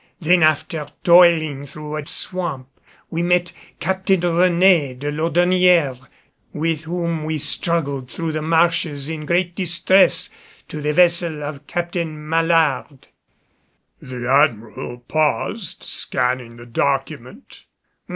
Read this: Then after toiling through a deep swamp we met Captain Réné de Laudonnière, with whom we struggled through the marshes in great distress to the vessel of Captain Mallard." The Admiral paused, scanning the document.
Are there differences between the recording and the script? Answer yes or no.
yes